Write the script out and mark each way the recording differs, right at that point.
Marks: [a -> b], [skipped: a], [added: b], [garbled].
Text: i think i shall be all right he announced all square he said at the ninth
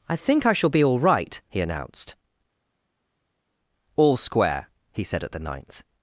i think i shall be all right he announced all square he said at the ninth